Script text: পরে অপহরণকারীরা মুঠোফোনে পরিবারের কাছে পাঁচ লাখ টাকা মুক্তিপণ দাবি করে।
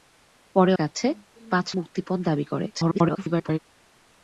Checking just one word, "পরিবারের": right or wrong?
wrong